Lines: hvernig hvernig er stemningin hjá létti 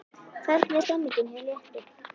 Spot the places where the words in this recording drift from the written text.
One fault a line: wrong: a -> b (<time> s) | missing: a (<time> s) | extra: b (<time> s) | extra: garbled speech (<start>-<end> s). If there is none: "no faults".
missing: hvernig (0.8 s)